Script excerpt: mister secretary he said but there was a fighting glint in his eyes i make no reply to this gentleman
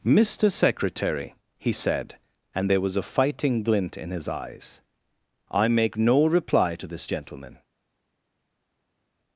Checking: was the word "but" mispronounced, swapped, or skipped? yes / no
yes